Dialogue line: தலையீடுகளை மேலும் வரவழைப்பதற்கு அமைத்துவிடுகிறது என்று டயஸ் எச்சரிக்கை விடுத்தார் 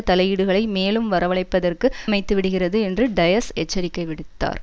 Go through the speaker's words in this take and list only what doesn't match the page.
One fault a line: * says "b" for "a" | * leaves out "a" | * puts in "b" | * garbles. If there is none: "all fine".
all fine